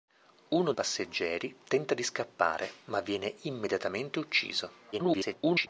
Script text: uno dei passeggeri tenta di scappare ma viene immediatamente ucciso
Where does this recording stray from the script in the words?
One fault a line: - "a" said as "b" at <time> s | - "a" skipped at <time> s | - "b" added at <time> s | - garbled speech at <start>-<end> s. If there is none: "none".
- "dei" skipped at 0.7 s
- garbled speech at 4.9-5.7 s